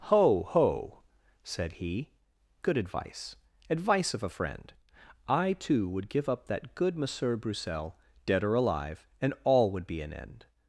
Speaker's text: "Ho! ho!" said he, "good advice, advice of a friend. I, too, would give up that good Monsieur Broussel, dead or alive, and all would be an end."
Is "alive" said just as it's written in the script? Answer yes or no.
yes